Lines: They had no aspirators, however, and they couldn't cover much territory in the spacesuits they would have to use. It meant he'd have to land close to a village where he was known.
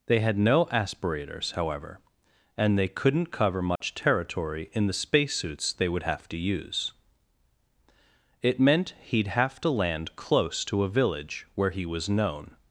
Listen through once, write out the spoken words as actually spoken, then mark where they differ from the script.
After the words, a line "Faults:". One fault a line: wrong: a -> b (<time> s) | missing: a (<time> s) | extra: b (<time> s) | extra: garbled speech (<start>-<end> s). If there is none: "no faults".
They had no aspirators, however, and they couldn't cover much territory in the spacesuits they would have to use. It meant he'd have to land close to a village where he was known.
Faults:
no faults